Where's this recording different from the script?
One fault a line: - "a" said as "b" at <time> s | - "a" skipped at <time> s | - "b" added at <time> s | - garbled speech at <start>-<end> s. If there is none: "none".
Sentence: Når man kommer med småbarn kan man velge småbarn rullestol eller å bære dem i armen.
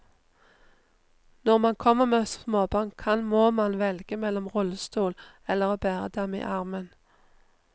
- "må" added at 3.2 s
- "småbarn" said as "mellom" at 4.2 s